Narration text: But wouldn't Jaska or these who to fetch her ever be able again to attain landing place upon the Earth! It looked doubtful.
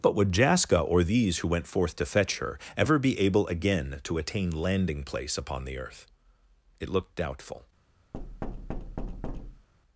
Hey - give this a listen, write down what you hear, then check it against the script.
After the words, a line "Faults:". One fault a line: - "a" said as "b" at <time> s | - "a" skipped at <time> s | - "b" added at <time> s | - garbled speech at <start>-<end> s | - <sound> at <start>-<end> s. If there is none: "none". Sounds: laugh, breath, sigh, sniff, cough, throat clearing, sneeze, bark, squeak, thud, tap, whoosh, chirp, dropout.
But would Jaska or these who went forth to fetch her ever be able again to attain landing place upon the Earth! It looked doubtful.
Faults:
- "wouldn't" said as "would" at 0.1 s
- "went forth" added at 1.5 s
- thud at 8.1-9.7 s